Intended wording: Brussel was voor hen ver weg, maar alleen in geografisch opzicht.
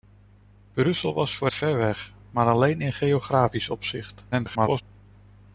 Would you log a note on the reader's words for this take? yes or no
yes